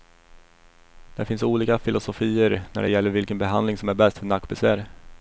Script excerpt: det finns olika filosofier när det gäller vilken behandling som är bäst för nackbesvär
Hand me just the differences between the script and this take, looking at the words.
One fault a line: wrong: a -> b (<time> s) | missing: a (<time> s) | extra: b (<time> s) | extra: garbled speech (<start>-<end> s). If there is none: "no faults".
no faults